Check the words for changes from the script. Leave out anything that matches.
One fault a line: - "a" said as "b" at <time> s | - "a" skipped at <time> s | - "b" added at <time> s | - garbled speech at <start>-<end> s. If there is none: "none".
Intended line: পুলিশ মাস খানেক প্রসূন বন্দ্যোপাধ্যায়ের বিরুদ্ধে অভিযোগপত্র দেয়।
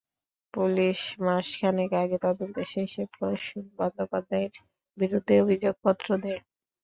- "আগে তদন্ত শেষে" added at 2.0 s